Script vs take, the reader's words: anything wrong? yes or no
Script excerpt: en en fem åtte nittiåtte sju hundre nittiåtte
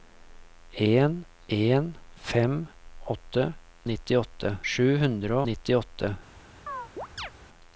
no